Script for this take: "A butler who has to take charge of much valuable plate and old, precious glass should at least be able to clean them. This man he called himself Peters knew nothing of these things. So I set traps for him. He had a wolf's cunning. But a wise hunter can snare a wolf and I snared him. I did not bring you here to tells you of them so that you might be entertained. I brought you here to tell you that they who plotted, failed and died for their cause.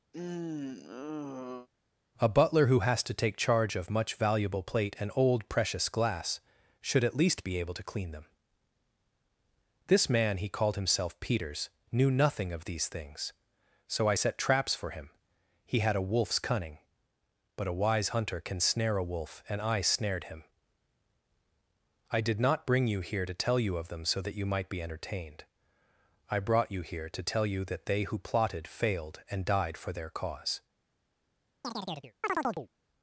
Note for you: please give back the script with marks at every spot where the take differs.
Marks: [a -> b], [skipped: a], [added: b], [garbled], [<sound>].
[sigh] "A butler who has to take charge of much valuable plate and old, precious glass should at least be able to clean them. This man he called himself Peters knew nothing of these things. So I set traps for him. He had a wolf's cunning. But a wise hunter can snare a wolf and I snared him. I did not bring you here to [tells -> tell] you of them so that you might be entertained. I brought you here to tell you that they who plotted, failed and died for their cause. [chirp]